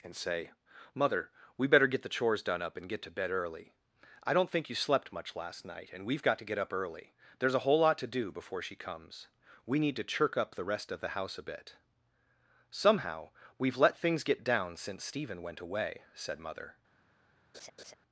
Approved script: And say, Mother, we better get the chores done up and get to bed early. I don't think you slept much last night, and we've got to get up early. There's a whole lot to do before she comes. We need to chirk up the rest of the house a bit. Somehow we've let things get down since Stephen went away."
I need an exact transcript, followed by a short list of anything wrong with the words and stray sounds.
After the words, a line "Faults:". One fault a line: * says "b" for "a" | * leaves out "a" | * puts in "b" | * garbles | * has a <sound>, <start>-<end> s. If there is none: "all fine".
And say, Mother, we better get the chores done up and get to bed early. I don't think you slept much last night, and we've got to get up early. There's a whole lot to do before she comes. We need to chirk up the rest of the house a bit. Somehow we've let things get down since Stephen went away." Said Mother
Faults:
* puts in "Said Mother"
* has a laugh, 17.5-17.9 s